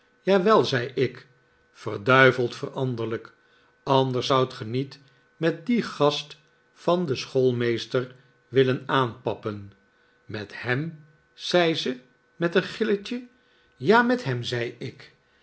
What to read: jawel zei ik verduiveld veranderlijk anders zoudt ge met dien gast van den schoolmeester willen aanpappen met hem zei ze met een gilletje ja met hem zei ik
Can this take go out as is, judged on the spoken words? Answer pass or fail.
fail